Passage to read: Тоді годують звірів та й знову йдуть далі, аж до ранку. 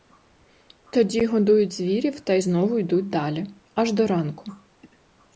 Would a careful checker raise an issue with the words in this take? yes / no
no